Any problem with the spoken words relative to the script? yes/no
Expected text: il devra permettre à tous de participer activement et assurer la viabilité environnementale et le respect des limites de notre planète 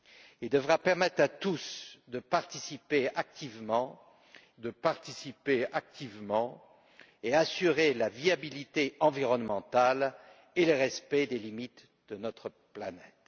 yes